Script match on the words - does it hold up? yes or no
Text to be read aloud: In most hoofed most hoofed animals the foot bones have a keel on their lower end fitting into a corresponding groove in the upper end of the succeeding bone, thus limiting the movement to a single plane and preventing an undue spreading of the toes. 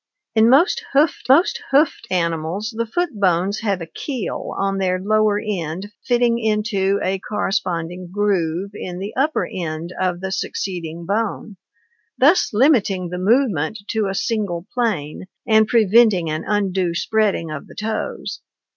yes